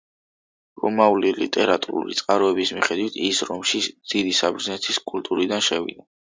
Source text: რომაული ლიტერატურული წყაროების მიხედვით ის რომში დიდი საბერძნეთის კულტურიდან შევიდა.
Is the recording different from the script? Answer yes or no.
no